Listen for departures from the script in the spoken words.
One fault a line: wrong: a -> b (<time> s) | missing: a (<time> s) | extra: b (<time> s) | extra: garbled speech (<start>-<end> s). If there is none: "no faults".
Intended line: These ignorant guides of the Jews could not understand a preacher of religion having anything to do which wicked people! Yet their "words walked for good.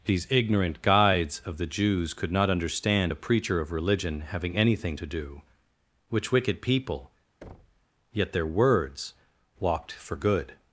no faults